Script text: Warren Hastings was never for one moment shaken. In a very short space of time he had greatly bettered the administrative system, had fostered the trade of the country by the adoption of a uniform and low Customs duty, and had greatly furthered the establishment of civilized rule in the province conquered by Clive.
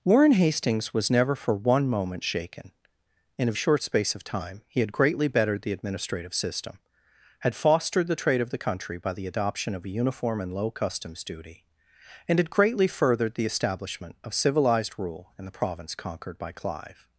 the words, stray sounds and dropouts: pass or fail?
fail